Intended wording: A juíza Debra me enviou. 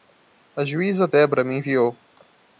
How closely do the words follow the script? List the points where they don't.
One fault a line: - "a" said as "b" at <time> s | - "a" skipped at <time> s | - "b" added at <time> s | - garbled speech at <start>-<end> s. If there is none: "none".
none